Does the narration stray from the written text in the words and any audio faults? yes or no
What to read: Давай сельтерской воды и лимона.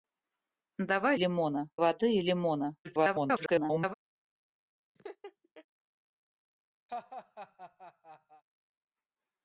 yes